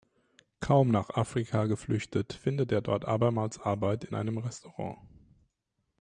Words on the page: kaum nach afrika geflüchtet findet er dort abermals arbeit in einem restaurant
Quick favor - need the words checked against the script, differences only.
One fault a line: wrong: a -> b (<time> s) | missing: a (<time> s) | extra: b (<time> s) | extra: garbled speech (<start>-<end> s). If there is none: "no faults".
no faults